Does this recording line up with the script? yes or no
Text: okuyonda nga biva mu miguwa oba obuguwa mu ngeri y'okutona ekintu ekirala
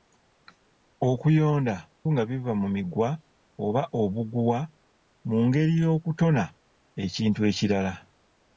yes